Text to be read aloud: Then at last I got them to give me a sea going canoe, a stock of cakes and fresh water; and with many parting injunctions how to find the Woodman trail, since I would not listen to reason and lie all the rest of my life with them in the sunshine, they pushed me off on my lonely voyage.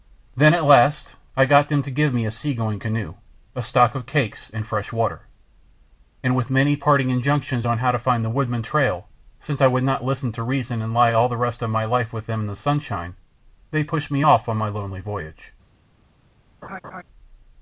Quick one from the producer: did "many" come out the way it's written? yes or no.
yes